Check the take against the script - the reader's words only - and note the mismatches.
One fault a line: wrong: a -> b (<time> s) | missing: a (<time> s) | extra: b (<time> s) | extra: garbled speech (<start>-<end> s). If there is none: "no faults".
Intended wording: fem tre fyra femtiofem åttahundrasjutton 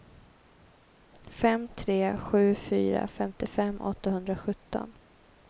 extra: sju (2.2 s)